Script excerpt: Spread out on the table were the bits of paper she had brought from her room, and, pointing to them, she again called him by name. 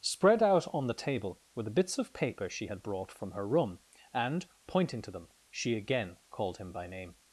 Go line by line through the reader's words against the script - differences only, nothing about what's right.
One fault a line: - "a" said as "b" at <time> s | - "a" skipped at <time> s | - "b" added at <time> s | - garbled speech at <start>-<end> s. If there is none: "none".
none